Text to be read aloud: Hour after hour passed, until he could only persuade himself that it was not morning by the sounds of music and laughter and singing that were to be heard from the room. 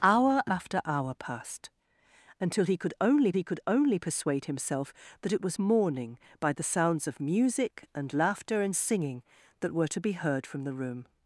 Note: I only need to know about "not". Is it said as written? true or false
false